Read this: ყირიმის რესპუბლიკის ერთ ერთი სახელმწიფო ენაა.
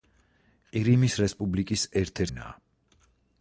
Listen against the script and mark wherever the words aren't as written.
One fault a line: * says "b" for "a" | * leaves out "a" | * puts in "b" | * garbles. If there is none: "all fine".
* leaves out "ერთი სახელმწიფო"